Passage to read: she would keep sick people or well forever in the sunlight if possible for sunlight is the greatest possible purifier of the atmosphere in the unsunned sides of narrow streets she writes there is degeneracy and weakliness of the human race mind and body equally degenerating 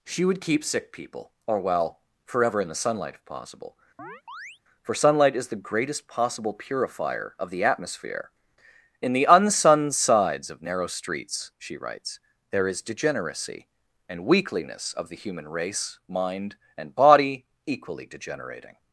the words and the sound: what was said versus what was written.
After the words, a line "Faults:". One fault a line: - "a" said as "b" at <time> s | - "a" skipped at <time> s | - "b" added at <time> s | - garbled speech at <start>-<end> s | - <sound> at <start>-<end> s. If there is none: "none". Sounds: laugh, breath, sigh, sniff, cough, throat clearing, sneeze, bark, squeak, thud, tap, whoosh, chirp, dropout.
she would keep sick people or well forever in the sunlight if possible for sunlight is the greatest possible purifier of the atmosphere in the unsunned sides of narrow streets she writes there is degeneracy and weakliness of the human race mind and body equally degenerating
Faults:
- chirp at 4.0-4.6 s